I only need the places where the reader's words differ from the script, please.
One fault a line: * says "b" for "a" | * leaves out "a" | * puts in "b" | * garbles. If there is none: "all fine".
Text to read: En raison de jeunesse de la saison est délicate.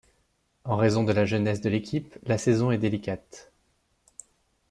* puts in "la"
* puts in "l'équipe"